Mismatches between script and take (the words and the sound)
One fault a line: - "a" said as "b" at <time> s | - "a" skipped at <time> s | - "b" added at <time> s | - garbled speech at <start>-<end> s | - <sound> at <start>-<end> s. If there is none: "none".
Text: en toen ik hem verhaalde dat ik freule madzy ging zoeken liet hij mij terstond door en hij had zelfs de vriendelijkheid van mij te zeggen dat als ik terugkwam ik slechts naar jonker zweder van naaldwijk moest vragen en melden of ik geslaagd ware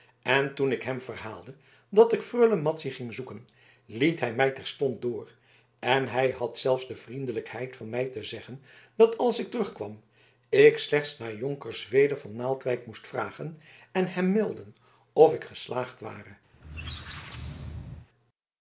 - "hem" added at 14.1 s
- squeak at 16.5-18.1 s